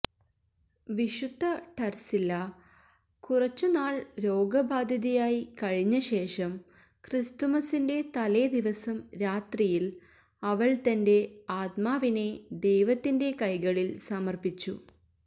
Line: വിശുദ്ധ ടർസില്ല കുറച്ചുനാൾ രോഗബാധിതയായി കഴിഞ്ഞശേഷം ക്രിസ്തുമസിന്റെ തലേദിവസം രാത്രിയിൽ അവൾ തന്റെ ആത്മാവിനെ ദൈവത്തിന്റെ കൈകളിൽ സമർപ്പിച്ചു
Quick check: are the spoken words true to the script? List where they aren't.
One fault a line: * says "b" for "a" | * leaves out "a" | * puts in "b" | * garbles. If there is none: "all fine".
all fine